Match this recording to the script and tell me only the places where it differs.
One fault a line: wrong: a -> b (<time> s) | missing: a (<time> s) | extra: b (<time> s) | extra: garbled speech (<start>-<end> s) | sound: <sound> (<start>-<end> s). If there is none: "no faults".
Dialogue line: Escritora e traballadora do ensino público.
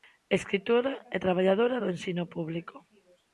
no faults